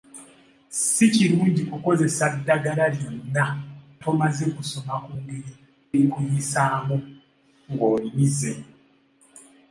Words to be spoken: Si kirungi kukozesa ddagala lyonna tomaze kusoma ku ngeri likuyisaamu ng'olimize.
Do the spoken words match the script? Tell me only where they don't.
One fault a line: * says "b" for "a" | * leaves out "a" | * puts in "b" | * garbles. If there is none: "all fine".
all fine